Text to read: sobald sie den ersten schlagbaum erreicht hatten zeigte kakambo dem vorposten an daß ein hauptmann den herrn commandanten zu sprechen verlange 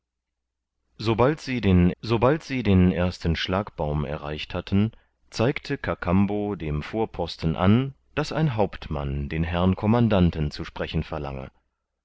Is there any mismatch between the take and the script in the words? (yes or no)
yes